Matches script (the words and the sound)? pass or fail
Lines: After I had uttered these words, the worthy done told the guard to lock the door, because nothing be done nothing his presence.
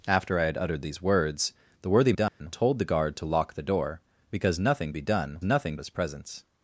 fail